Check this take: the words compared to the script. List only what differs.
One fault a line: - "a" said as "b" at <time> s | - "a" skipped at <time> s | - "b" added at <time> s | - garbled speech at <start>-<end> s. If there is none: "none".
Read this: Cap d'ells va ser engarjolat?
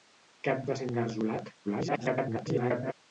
- "d'ells" skipped at 0.7 s
- garbled speech at 1.6-2.9 s